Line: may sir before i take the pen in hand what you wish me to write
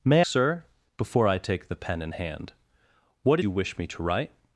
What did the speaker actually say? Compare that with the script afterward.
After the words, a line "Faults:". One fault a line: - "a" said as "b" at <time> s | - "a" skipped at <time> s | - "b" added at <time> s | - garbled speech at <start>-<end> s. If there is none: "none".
may sir before i take the pen in hand what you wish me to write
Faults:
none